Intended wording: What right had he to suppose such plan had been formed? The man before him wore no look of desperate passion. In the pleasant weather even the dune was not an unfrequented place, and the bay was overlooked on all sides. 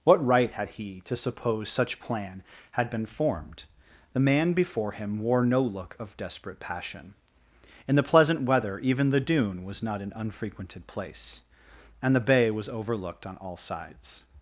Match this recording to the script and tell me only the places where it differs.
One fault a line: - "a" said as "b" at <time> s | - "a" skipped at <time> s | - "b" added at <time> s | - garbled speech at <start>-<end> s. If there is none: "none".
none